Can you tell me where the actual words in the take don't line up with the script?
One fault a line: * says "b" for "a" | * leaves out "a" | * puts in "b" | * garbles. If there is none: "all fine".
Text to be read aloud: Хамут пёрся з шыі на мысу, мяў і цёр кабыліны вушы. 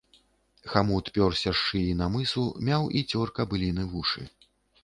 all fine